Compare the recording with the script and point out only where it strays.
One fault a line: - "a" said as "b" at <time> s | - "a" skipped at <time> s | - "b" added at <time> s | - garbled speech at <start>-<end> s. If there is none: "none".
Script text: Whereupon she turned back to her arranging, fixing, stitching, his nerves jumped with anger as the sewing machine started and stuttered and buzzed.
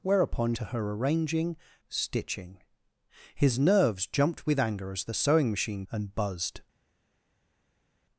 - "she turned back" skipped at 0.6 s
- "fixing" skipped at 1.6 s
- "started and stuttered" skipped at 5.9 s